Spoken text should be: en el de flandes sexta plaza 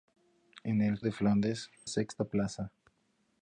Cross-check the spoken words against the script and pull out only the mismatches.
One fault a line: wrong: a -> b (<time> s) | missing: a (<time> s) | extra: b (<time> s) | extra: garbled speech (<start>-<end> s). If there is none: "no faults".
no faults